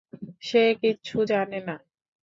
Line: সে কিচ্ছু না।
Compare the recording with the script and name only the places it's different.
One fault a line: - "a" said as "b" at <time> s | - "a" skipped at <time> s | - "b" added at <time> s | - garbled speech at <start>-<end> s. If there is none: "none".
- "জানে" added at 1.3 s